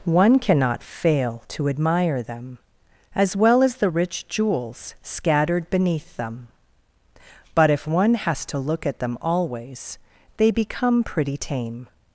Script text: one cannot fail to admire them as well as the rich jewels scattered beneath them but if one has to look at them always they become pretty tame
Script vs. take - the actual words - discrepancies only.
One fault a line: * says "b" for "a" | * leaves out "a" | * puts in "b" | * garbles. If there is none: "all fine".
all fine